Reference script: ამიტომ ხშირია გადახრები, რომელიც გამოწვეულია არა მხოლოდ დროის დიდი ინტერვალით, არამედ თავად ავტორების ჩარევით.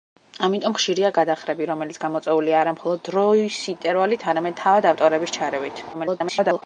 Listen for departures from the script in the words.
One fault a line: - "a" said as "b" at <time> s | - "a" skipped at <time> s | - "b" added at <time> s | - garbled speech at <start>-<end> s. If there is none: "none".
- "დიდი" skipped at 3.6 s
- garbled speech at 5.9-6.6 s